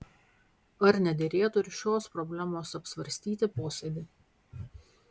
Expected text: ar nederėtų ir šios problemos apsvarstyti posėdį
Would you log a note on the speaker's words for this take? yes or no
no